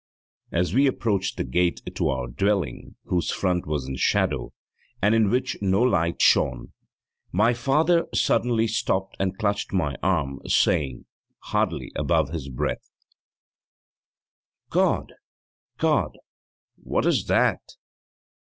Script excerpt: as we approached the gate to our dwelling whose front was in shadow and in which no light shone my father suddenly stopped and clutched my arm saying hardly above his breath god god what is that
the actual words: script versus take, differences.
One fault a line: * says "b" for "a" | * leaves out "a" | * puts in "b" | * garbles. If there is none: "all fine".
all fine